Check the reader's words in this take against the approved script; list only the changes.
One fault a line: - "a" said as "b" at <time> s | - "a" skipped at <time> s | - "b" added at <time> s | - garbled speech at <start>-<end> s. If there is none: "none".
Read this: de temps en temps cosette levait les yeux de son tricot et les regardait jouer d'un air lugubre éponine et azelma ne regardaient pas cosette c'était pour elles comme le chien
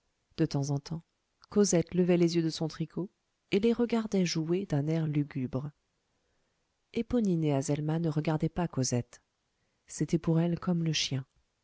none